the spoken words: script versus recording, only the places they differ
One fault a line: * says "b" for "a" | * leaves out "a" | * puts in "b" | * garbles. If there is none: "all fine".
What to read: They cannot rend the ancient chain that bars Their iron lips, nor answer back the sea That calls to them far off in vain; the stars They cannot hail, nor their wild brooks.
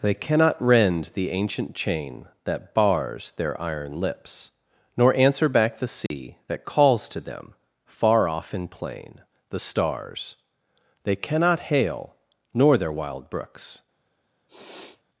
* says "plain" for "vain"